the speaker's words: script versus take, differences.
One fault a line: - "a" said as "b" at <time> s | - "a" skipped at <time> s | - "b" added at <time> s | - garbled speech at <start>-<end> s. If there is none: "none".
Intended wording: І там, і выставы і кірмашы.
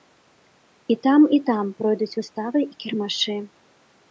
- "там пройдуць" added at 1.5 s